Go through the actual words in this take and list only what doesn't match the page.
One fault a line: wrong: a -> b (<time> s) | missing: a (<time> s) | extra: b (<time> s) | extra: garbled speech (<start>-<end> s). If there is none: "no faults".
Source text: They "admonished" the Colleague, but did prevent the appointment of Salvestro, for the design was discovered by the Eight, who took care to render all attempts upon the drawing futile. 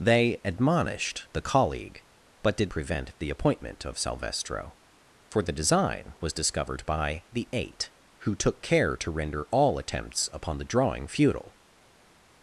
no faults